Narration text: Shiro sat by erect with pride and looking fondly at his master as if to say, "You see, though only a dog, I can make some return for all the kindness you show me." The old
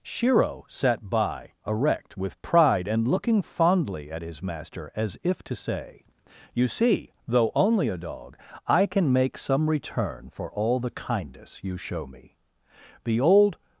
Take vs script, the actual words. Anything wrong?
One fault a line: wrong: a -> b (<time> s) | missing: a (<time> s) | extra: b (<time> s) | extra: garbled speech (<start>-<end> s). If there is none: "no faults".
no faults